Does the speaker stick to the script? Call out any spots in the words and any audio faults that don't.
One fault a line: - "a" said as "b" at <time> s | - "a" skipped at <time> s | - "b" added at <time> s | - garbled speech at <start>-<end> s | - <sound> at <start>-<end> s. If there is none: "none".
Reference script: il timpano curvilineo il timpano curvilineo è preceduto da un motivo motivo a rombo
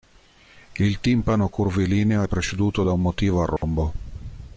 - "il timpano curvilineo" skipped at 2.2 s
- "motivo" skipped at 3.4 s
- dropout at 3.6-3.6 s